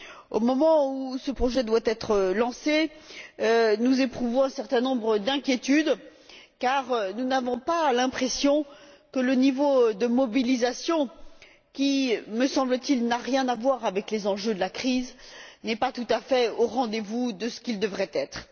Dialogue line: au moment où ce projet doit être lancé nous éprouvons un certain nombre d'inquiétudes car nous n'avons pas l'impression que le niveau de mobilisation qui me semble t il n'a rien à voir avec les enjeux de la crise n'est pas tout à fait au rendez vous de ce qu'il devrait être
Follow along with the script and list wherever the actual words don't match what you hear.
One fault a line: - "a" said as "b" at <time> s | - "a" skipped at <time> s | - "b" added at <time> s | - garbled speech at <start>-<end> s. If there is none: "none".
none